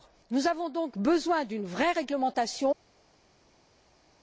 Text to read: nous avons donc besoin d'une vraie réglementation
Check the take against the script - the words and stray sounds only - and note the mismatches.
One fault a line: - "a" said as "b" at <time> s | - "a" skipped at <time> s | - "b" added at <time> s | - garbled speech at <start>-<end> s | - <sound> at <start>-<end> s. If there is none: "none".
none